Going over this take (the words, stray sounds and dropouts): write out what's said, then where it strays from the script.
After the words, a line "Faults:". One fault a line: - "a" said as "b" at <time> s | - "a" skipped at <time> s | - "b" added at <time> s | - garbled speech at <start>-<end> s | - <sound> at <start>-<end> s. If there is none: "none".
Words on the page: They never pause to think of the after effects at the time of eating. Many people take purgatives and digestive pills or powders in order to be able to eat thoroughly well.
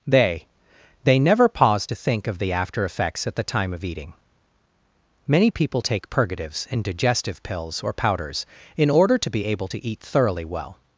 They they never pause to think of the after effects at the time of eating. Many people take purgatives and digestive pills or powders in order to be able to eat thoroughly well.
Faults:
- "they" added at 1.0 s